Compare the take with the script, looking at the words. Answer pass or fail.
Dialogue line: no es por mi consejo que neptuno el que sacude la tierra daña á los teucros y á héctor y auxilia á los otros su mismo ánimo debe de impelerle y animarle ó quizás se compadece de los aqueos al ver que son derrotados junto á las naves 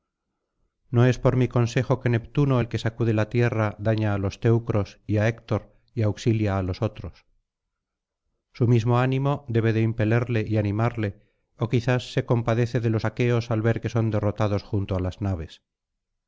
pass